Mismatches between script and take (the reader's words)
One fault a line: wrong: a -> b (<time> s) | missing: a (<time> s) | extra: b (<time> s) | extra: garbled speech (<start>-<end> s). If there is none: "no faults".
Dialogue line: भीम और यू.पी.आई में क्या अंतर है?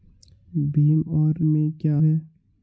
missing: यू.पी.आई (1.4 s)
missing: अंतर (2.0 s)